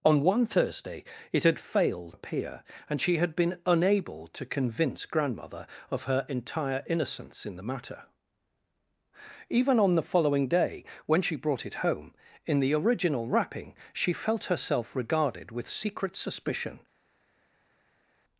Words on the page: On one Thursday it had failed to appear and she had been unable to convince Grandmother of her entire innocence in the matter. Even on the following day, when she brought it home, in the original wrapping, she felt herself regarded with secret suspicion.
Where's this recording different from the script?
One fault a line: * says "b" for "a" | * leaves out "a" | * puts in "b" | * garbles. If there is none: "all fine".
* leaves out "to"